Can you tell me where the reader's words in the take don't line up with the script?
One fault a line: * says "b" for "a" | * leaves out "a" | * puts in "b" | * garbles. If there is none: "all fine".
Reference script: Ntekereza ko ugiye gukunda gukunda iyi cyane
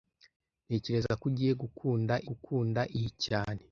all fine